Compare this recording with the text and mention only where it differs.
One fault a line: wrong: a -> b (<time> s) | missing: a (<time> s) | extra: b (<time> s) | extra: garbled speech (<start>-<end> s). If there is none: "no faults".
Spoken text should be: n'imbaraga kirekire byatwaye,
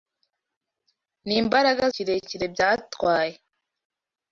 no faults